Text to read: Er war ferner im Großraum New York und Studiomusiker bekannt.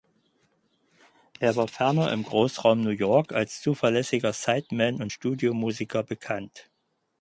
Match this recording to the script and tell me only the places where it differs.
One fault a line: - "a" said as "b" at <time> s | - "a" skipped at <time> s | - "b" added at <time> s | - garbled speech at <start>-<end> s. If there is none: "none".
- "als zuverlässiger Sideman" added at 3.3 s